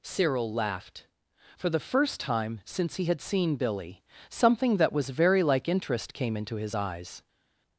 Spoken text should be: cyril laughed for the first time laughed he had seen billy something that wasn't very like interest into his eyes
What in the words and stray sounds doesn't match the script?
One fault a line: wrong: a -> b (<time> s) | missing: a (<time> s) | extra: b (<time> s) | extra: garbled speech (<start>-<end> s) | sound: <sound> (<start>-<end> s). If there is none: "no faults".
wrong: laughed -> since (2.6 s)
wrong: wasn't -> was (4.9 s)
extra: came (6.1 s)